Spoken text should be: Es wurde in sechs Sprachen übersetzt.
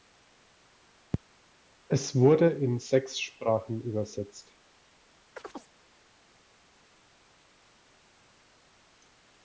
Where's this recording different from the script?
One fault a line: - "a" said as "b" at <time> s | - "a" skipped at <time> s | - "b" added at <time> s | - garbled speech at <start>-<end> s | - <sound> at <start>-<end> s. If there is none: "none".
- chirp at 5.4-5.7 s